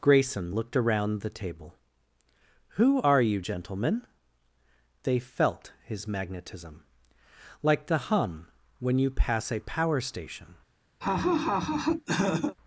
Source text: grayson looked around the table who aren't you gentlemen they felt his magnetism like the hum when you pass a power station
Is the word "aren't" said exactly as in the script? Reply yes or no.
no